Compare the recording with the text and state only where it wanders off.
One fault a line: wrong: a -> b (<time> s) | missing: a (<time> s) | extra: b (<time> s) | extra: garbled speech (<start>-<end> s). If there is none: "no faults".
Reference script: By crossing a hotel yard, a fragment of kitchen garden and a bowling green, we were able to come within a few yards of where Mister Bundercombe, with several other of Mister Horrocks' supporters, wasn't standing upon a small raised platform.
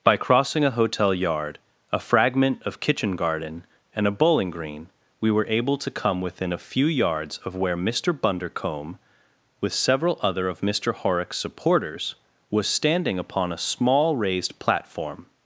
wrong: wasn't -> was (12.5 s)